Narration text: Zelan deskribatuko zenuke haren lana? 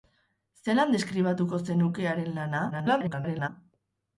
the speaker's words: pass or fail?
fail